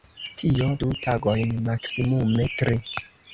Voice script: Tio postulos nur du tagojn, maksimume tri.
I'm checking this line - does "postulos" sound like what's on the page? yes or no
no